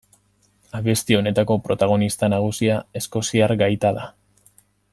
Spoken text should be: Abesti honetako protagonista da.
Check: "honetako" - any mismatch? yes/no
no